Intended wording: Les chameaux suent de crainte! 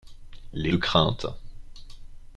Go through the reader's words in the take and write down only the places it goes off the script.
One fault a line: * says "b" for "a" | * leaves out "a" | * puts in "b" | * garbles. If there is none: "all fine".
* leaves out "chameaux suent"